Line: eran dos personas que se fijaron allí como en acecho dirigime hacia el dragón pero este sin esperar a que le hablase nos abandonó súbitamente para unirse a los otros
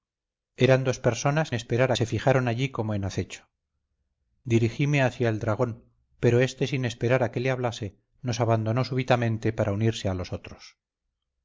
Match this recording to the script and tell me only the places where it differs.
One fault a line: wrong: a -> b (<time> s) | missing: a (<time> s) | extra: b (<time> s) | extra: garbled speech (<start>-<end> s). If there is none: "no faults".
wrong: que -> esperar (1.5 s)